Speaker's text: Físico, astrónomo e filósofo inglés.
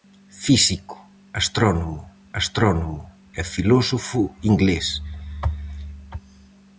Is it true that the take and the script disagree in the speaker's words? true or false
true